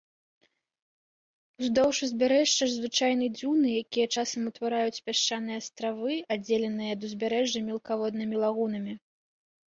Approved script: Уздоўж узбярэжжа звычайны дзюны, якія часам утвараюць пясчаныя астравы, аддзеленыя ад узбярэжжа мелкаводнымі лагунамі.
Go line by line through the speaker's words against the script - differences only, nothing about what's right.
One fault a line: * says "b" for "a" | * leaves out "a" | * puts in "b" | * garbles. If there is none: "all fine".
all fine